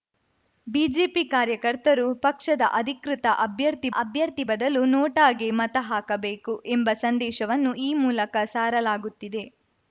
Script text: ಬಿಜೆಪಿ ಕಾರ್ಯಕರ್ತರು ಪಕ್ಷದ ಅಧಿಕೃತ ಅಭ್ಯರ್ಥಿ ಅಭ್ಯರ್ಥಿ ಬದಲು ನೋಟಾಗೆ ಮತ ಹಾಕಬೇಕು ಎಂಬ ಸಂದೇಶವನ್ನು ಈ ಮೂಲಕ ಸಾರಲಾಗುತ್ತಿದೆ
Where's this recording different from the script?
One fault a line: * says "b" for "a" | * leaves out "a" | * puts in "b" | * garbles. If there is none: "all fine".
all fine